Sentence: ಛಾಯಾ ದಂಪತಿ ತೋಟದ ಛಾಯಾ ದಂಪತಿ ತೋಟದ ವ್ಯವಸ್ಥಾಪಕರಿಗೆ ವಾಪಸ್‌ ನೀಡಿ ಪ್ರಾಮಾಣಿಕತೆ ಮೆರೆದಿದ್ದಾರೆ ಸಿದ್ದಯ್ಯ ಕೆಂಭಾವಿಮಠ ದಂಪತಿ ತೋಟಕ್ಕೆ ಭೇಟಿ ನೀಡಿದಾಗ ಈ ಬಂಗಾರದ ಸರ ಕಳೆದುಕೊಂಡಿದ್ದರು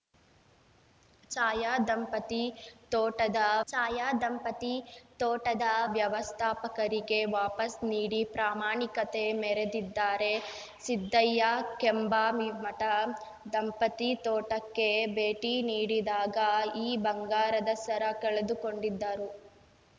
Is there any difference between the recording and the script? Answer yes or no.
no